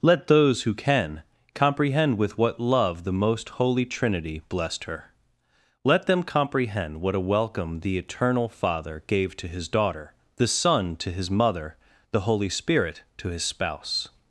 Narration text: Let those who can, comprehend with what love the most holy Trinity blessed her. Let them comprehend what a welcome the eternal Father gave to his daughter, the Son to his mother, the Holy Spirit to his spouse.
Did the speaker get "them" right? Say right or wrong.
right